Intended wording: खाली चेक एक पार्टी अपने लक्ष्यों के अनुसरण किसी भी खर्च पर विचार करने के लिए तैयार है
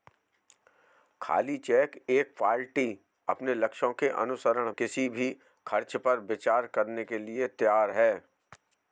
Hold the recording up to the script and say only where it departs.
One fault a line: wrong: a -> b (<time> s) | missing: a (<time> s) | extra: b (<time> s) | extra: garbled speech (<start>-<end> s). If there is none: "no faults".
no faults